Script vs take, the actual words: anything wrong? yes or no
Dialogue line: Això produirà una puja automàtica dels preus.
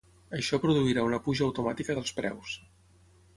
no